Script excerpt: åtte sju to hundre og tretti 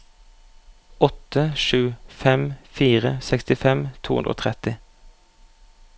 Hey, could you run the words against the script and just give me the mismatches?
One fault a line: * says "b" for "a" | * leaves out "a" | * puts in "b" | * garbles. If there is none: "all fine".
* puts in "fem fire sekstifem"